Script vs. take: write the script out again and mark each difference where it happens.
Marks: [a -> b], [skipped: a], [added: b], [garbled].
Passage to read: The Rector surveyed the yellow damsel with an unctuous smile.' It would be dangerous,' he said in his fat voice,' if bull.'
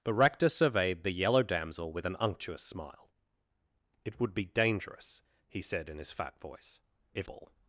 The Rector surveyed the yellow damsel with an unctuous smile.' It would be dangerous,' he said in his fat voice,' if bull.'